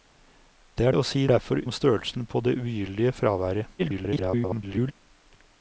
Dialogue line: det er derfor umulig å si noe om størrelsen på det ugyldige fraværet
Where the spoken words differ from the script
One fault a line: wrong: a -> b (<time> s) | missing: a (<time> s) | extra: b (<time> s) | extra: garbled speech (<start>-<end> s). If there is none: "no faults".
missing: derfor umulig (0.9 s)
wrong: noe -> derfor (1.3 s)
extra: garbled speech (3.8-4.9 s)